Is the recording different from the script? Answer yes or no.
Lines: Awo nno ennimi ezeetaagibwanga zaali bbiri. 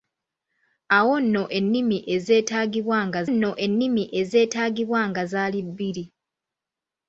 yes